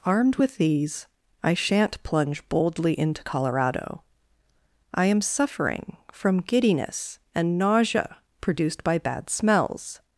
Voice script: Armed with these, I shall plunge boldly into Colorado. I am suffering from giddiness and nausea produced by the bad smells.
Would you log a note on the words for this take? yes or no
yes